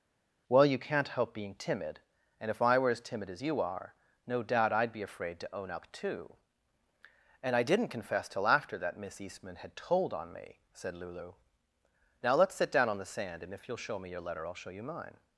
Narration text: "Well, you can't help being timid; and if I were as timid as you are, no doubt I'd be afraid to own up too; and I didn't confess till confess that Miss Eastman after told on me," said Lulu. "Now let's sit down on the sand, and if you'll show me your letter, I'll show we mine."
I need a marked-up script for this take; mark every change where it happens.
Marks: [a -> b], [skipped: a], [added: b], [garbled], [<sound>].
"Well, you can't help being timid; and if I were as timid as you are, no doubt I'd be afraid to own up too; and I didn't confess till [confess -> after] that Miss Eastman [after -> had] told on me," said Lulu. "Now let's sit down on the sand, and if you'll show me your letter, I'll show [we -> you] mine."